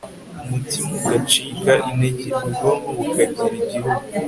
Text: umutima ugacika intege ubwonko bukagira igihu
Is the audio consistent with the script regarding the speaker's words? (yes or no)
yes